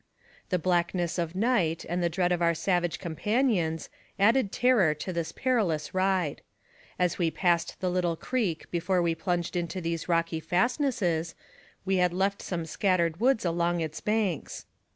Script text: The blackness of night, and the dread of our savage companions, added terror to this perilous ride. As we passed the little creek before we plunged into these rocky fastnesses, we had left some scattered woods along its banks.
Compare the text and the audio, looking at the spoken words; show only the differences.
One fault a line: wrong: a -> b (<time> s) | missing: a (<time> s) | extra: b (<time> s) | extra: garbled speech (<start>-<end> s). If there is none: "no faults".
no faults